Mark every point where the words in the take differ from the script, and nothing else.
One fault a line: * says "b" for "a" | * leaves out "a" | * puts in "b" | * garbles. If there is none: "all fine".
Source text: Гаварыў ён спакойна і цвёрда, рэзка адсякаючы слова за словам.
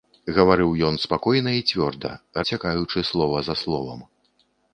* leaves out "рэзка"